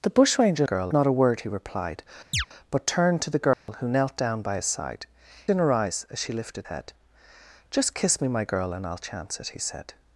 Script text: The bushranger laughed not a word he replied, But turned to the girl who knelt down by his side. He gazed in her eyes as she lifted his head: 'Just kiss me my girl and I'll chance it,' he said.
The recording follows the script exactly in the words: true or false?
false